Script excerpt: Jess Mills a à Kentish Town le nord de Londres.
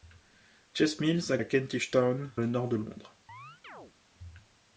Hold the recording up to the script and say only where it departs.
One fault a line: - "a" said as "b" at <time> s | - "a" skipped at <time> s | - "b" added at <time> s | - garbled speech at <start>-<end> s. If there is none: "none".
none